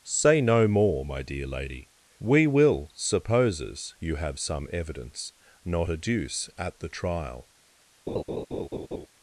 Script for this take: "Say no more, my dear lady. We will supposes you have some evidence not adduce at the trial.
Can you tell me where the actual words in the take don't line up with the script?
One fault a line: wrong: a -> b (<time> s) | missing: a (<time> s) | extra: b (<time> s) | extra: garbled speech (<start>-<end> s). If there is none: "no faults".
no faults